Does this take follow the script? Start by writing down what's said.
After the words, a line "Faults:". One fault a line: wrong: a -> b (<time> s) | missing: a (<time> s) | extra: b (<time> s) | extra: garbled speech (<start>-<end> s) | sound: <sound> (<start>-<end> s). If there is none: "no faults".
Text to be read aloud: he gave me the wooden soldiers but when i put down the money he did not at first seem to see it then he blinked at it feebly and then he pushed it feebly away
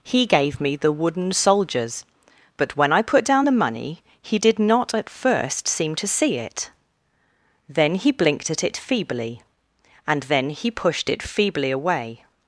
he gave me the wooden soldiers but when i put down the money he did not at first seem to see it then he blinked at it feebly and then he pushed it feebly away
Faults:
no faults